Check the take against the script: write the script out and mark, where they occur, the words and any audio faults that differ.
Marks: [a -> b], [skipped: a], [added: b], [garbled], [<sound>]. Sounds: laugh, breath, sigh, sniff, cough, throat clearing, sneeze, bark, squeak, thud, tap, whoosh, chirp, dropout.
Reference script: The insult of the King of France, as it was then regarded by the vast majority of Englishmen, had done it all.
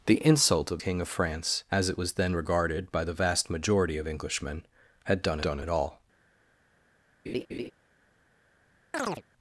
The insult of [skipped: the] King of France, as it was then regarded by the vast majority of Englishmen, had done [added: done] it all. [laugh] [chirp]